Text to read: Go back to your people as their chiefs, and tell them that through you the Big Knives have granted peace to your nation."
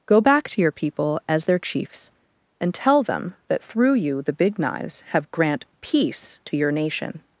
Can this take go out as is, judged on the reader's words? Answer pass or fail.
fail